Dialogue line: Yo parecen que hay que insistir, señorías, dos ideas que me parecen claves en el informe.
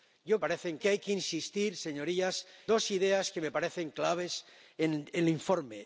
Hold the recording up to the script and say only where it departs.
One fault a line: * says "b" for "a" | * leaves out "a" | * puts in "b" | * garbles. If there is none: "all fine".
all fine